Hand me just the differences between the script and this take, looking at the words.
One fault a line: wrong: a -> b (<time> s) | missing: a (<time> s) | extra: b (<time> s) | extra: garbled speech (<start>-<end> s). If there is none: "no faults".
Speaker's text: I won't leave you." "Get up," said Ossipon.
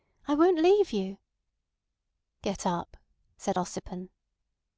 no faults